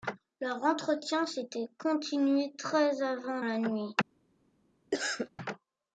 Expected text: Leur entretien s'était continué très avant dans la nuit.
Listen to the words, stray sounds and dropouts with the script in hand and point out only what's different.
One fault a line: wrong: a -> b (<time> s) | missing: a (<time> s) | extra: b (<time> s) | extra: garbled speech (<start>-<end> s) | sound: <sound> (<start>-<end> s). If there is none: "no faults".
missing: dans (3.4 s)
sound: cough (4.9-5.3 s)